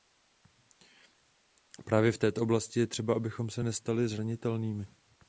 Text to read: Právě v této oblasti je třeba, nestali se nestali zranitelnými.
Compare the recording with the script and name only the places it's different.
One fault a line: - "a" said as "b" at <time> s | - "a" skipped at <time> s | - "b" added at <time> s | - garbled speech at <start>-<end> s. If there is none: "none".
- "nestali" said as "abychom" at 3.1 s